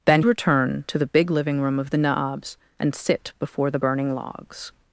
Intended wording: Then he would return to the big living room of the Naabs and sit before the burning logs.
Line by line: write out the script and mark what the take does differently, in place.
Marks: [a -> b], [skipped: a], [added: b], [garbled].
Then [skipped: he would] return to the big living room of the Naabs and sit before the burning logs.